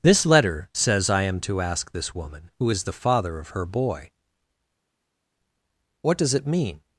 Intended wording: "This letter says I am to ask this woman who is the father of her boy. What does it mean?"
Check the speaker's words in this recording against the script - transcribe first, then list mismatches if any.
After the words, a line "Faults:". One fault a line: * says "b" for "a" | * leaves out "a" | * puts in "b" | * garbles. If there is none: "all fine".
"This letter says I am to ask this woman who is the father of her boy. What does it mean?"
Faults:
all fine